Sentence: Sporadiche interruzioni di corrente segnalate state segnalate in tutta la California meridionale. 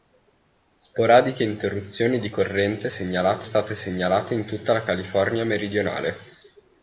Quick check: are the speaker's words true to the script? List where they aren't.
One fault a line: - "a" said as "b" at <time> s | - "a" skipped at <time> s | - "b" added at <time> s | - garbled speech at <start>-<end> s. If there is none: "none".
none